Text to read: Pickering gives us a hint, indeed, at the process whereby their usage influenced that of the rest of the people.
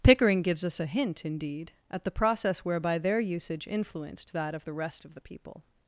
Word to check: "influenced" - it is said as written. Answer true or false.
true